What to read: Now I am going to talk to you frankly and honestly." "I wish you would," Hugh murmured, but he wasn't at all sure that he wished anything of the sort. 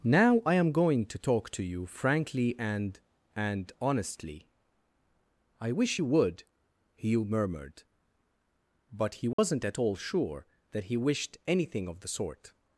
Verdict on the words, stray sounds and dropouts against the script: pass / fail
fail